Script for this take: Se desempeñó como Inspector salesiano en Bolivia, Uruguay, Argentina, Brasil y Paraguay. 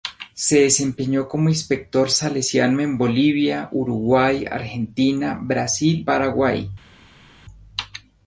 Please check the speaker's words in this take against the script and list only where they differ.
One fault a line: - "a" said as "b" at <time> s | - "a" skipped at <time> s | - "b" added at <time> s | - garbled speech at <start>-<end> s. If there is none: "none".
- "y" skipped at 6.1 s